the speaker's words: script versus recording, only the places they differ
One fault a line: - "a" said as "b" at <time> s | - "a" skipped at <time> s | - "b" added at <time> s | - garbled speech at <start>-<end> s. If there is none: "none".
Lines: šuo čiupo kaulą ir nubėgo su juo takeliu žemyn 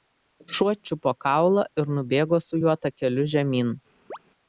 none